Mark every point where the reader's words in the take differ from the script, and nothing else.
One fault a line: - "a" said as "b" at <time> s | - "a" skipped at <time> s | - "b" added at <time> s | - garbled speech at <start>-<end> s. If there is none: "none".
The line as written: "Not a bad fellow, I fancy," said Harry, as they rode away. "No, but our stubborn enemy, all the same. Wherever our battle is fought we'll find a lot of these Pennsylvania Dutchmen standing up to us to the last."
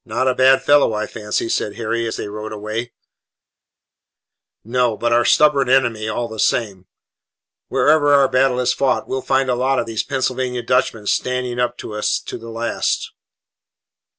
none